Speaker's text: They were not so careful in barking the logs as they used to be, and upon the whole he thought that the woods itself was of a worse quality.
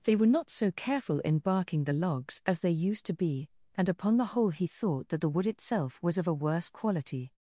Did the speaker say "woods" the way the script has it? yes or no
no